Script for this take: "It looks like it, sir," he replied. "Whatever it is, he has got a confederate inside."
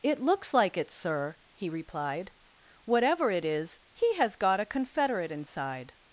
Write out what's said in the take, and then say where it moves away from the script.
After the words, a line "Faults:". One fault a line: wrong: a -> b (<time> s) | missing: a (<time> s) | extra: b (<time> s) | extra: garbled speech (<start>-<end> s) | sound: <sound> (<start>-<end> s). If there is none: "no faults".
"It looks like it, sir," he replied. "Whatever it is, he has got a confederate inside."
Faults:
no faults